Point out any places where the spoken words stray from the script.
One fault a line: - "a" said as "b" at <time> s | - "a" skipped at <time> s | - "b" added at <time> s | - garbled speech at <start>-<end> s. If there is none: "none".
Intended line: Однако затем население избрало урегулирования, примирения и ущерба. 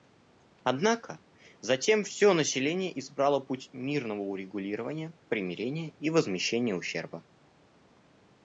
- "все" added at 2.0 s
- "путь мирного" added at 3.4 s
- "возмещения" added at 6.1 s